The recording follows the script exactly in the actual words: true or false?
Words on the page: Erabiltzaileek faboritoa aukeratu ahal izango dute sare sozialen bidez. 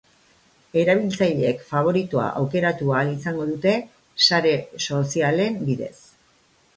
true